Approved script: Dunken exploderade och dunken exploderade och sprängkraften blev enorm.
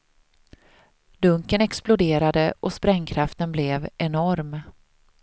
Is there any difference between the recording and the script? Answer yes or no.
yes